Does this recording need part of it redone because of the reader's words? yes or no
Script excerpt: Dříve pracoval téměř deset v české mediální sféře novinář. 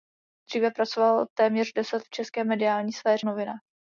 no